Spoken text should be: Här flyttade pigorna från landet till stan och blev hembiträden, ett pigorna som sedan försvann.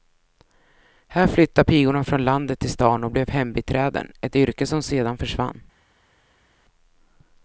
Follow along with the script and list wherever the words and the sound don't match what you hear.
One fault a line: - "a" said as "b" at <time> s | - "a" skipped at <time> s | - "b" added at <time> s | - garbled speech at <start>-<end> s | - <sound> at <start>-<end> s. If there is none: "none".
- "pigorna" said as "yrke" at 4.4 s